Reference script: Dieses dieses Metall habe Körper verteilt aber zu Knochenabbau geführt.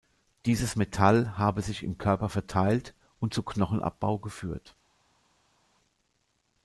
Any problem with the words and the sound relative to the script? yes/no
yes